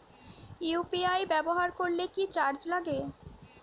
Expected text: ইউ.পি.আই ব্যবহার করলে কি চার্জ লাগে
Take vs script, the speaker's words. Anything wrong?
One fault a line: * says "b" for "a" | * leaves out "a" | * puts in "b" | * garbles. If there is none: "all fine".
all fine